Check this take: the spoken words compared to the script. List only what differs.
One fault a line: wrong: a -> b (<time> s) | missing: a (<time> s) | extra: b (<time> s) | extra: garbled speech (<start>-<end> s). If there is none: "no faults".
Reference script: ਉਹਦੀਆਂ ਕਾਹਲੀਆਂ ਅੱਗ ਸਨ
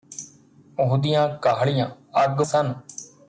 no faults